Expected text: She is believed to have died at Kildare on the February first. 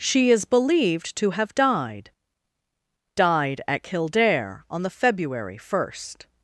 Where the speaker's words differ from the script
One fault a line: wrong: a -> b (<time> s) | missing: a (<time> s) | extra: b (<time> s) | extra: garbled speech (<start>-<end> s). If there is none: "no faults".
extra: died (3.1 s)